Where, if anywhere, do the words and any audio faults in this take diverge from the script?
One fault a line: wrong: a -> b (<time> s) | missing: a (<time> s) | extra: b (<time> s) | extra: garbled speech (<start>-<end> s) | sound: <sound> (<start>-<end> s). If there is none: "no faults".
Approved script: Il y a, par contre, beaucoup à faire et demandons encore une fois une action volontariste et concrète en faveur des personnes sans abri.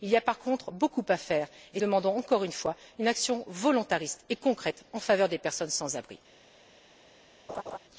sound: laugh (7.5-7.8 s)